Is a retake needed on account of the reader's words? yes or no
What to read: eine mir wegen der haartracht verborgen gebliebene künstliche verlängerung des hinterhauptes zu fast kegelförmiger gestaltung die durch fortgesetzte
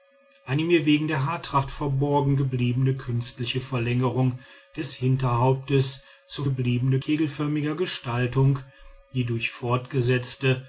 yes